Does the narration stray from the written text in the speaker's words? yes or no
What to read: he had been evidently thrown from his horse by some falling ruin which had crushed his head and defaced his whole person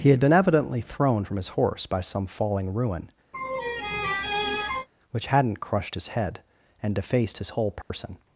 yes